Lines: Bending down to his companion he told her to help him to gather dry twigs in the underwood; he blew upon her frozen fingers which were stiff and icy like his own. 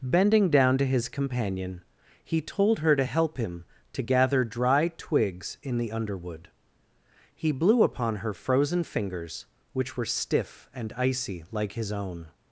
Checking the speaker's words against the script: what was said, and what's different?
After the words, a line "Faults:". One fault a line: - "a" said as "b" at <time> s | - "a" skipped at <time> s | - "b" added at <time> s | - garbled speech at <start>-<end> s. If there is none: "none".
Bending down to his companion he told her to help him to gather dry twigs in the underwood; he blew upon her frozen fingers which were stiff and icy like his own.
Faults:
none